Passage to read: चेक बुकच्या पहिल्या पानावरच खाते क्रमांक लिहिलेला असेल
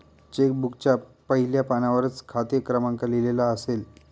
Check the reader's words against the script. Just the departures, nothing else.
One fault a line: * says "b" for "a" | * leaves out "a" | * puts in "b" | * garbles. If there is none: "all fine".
all fine